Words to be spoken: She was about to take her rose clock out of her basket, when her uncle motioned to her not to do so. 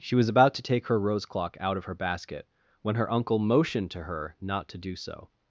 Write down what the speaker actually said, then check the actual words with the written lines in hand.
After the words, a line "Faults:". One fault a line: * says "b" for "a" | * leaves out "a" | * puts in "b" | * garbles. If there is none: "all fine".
She was about to take her rose clock out of her basket, when her uncle motioned to her not to do so.
Faults:
all fine